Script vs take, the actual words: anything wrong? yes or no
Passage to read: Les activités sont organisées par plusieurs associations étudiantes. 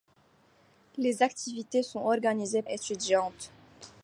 yes